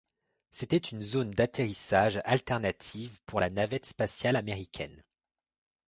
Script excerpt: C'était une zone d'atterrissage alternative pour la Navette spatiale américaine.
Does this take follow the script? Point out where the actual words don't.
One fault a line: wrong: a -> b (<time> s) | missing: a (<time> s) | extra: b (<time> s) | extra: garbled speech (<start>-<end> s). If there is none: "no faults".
no faults